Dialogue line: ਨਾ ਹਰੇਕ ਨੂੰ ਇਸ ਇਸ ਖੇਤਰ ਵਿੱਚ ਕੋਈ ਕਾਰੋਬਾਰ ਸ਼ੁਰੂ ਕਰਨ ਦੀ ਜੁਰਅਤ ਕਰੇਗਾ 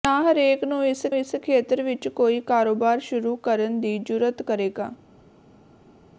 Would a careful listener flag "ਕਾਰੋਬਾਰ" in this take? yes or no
no